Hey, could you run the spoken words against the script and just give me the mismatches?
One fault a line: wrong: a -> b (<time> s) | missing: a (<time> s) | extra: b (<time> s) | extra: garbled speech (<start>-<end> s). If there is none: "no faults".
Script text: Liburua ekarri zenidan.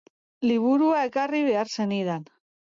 extra: behar (1.5 s)